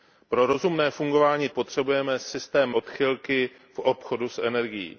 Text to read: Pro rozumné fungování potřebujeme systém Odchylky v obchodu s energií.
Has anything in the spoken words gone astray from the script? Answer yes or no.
no